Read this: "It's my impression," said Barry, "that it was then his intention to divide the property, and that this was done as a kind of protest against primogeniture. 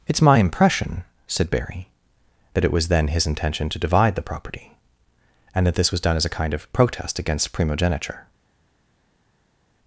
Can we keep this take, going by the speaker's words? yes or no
yes